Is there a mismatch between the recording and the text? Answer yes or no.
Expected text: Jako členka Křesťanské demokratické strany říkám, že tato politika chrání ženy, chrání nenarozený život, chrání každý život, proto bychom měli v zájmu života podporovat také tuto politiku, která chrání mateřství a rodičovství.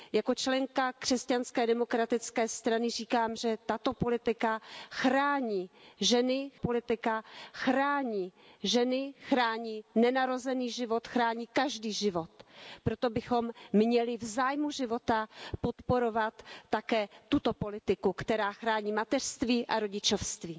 yes